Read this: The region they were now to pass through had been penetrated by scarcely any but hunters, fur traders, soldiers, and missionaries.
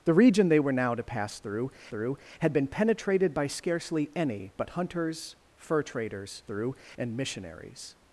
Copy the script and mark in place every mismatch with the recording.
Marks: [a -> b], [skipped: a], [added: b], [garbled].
The region they were now to pass through [added: through] had been penetrated by scarcely any but hunters, fur traders, [soldiers, -> through] and missionaries.